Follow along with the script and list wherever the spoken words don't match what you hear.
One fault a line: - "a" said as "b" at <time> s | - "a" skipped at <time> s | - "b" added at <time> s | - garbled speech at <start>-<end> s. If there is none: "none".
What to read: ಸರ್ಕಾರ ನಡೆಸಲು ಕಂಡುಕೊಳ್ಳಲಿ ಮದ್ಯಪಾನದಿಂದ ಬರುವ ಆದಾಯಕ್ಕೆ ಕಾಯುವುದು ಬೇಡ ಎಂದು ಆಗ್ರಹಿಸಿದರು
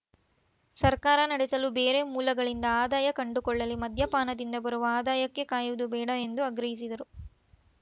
- "ಬೇರೆ ಮೂಲಗಳಿಂದ ಆದಾಯ" added at 1.8 s